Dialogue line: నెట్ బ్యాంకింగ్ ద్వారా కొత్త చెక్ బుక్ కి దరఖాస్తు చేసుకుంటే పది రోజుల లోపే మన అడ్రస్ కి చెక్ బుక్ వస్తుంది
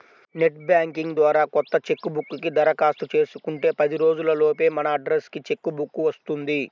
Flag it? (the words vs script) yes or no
no